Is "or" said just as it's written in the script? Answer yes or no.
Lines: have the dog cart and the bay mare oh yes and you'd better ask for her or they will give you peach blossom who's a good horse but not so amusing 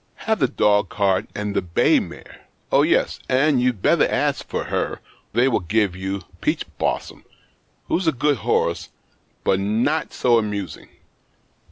no